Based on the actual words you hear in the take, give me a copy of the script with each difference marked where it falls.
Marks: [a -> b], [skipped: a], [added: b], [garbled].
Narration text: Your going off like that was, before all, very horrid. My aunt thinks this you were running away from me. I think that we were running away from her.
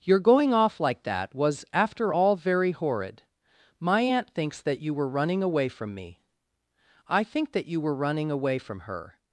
Your going off like that was, [before -> after] all, very horrid. My aunt thinks [this -> that] you were running away from me. I think that [we -> you] were running away from her.